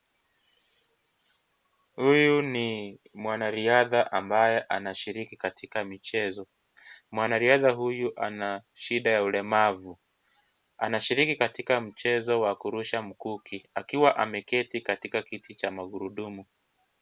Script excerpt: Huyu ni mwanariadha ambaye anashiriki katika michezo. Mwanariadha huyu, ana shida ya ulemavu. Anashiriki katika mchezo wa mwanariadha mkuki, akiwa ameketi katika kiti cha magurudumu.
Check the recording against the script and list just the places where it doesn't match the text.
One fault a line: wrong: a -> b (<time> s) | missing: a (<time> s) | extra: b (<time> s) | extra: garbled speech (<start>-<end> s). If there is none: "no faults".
wrong: mwanariadha -> kurusha (12.6 s)